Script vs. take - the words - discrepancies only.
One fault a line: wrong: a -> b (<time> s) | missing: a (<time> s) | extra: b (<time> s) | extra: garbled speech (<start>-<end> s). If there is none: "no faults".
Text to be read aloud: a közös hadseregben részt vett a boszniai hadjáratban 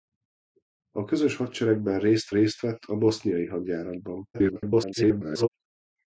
extra: részt (2.3 s)
extra: garbled speech (4.3-5.5 s)